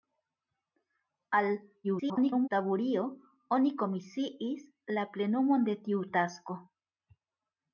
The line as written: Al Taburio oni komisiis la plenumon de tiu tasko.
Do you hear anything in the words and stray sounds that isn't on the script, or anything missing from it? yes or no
yes